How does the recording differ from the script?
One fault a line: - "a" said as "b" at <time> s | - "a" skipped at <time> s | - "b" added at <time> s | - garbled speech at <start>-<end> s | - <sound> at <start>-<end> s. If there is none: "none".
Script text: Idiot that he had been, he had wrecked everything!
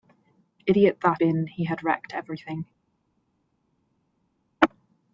- "he had" skipped at 1.2 s